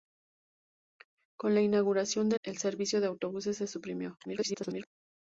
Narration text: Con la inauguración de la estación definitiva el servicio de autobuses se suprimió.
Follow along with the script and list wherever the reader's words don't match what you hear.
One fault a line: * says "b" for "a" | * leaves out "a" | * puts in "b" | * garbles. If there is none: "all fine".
* leaves out "la estación definitiva"
* garbles